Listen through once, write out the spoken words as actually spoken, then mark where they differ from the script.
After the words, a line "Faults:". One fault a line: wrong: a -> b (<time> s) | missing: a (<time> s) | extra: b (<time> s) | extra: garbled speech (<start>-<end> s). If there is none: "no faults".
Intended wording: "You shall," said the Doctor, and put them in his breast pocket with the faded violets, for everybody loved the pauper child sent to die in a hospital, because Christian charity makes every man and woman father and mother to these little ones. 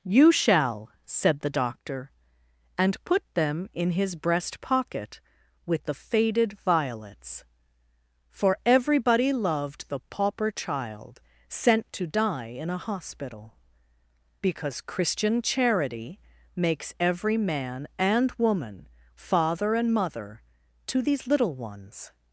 "You shall," said the Doctor, and put them in his breast pocket with the faded violets, for everybody loved the pauper child sent to die in a hospital, because Christian charity makes every man and woman father and mother to these little ones.
Faults:
no faults